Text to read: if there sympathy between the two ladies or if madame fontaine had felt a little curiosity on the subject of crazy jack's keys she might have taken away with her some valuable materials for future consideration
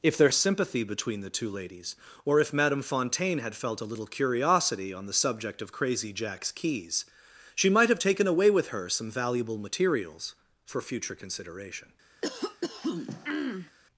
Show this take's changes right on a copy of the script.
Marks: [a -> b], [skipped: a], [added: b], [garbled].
if there sympathy between the two ladies or if madame fontaine had felt a little curiosity on the subject of crazy jack's keys she might have taken away with her some valuable materials for future consideration